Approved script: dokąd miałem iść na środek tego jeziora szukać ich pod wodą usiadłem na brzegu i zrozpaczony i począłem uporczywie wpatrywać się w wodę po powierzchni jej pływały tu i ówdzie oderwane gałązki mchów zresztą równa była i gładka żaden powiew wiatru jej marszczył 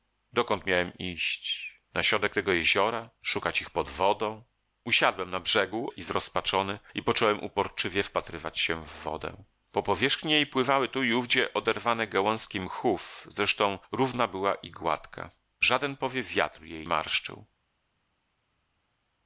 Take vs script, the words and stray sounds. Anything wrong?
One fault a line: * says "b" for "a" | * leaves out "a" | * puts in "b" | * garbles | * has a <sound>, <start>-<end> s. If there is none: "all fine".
all fine